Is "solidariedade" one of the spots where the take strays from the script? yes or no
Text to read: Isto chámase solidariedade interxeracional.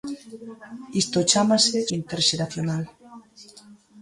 yes